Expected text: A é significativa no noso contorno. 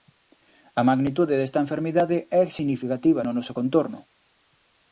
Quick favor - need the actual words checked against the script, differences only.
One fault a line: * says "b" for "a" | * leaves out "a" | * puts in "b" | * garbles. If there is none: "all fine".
* puts in "magnitude desta enfermidade"